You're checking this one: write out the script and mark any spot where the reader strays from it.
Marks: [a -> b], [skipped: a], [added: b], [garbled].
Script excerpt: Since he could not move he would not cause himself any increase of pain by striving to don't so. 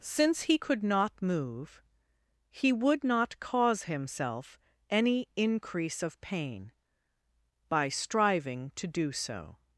Since he could not move he would not cause himself any increase of pain by striving to [don't -> do] so.